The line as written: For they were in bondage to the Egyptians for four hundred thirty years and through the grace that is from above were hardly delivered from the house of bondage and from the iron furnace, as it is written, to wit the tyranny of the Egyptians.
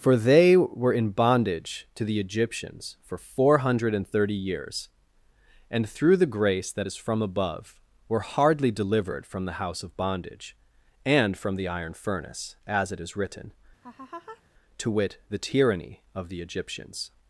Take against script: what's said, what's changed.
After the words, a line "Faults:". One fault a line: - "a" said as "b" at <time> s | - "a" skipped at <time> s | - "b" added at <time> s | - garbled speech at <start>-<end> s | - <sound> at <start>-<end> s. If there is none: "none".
For they were in bondage to the Egyptians for four hundred thirty years and through the grace that is from above were hardly delivered from the house of bondage and from the iron furnace, as it is written, to wit the tyranny of the Egyptians.
Faults:
- laugh at 13.8-14.4 s